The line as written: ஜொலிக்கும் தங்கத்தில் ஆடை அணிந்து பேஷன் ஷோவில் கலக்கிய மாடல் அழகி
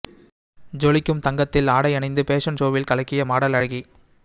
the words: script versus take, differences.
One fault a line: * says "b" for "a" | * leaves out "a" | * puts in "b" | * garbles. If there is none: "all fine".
all fine